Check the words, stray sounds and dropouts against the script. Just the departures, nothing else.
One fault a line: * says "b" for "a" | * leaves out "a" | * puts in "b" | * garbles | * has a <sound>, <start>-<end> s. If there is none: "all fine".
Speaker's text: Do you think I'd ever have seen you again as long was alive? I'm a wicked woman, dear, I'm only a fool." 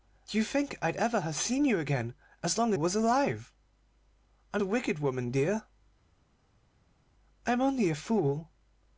all fine